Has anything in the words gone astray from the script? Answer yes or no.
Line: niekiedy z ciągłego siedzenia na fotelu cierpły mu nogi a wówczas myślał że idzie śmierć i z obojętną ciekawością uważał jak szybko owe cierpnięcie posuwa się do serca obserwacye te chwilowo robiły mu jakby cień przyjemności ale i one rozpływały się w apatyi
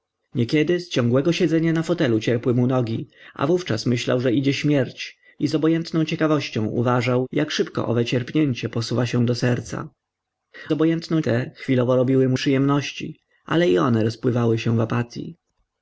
yes